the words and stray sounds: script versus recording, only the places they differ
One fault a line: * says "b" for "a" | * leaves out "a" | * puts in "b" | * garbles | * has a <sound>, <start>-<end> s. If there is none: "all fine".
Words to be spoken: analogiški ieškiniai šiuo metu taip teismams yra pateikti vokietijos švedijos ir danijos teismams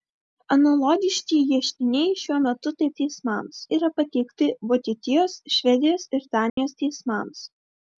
* has a dropout, 6.5-6.6 s